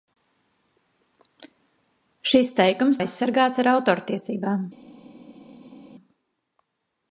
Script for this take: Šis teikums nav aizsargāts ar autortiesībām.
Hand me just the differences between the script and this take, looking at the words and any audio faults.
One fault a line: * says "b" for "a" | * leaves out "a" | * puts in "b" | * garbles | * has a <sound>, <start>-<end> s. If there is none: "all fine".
* leaves out "nav"